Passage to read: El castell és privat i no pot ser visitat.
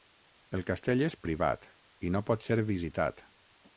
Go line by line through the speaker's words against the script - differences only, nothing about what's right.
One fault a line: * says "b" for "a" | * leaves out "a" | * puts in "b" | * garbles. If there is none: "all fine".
all fine